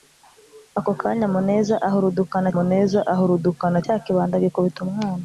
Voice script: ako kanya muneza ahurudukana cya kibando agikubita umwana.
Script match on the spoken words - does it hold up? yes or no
no